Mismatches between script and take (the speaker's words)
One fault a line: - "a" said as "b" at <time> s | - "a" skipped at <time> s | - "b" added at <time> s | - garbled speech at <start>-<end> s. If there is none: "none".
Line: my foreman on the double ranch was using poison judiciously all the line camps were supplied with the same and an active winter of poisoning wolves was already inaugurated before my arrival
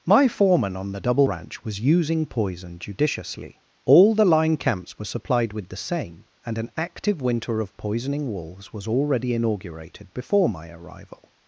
none